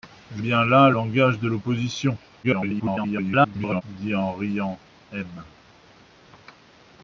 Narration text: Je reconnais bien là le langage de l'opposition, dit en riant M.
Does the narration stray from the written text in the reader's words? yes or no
yes